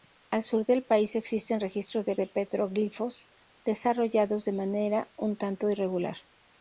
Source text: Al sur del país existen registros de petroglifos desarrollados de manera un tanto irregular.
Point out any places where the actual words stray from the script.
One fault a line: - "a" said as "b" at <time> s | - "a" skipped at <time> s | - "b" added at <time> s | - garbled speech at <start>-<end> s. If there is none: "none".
- "de" added at 2.2 s